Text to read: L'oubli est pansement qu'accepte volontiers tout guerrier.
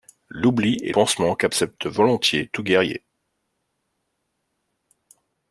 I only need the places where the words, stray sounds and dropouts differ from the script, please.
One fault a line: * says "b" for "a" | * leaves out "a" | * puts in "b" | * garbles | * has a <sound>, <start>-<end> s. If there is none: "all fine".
all fine